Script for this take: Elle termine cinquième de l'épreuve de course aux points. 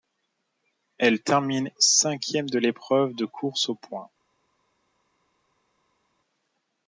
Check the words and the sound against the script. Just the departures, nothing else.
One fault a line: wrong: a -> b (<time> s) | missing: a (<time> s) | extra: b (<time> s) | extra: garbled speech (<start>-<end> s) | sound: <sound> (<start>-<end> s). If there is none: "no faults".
no faults